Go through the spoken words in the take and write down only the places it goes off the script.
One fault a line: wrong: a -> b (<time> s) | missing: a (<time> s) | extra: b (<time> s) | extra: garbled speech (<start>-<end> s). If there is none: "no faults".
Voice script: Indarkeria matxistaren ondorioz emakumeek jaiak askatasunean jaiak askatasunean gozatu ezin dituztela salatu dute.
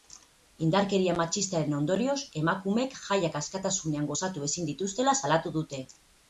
missing: jaiak askatasunean (4.1 s)